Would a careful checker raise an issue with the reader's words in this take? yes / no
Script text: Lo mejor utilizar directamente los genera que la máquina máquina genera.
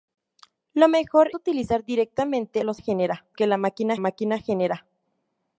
no